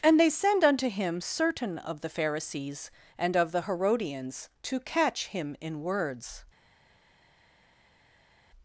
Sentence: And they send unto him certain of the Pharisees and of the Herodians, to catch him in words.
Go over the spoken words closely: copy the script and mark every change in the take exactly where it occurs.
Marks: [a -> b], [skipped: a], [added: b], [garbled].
And they send unto him certain of the Pharisees and of the Herodians, to catch him in words.